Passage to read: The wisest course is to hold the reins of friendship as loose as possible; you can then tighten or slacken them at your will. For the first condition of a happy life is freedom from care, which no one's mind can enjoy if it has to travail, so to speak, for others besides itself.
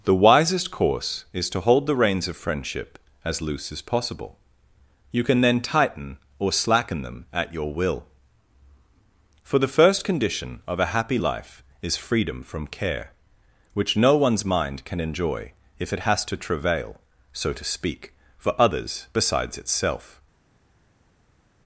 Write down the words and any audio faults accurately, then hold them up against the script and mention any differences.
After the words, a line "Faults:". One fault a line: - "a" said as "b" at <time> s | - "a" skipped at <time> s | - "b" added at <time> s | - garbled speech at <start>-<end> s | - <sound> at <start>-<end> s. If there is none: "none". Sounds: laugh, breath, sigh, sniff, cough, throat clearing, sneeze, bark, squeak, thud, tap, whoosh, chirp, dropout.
The wisest course is to hold the reins of friendship as loose as possible; you can then tighten or slacken them at your will. For the first condition of a happy life is freedom from care, which no one's mind can enjoy if it has to travail, so to speak, for others besides itself.
Faults:
none